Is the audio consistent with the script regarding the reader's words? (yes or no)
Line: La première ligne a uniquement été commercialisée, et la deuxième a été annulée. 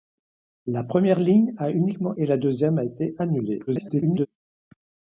no